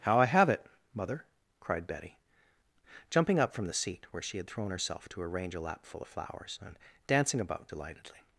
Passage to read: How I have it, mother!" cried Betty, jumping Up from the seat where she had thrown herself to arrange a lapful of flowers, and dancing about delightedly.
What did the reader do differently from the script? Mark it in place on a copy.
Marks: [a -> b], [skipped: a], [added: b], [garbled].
How I have it, mother!" cried Betty, jumping Up from the seat where she had thrown herself to arrange a lapful of flowers, and dancing about delightedly.